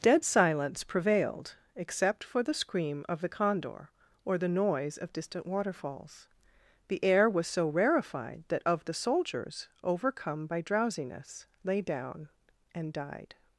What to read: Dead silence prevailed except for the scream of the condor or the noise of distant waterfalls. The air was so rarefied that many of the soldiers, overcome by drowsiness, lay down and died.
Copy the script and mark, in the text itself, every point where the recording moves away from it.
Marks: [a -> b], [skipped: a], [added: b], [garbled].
Dead silence prevailed except for the scream of the condor or the noise of distant waterfalls. The air was so rarefied that [skipped: many] of the soldiers, overcome by drowsiness, lay down and died.